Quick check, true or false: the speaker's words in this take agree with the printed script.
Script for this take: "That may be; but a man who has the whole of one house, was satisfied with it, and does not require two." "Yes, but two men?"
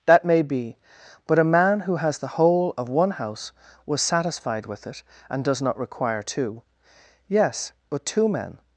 true